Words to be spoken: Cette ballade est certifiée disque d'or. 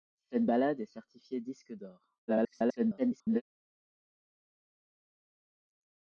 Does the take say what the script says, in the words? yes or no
no